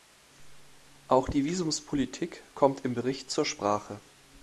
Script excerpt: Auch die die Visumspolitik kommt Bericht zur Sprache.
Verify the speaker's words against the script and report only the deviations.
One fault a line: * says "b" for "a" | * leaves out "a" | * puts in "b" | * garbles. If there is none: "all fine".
* leaves out "die"
* puts in "im"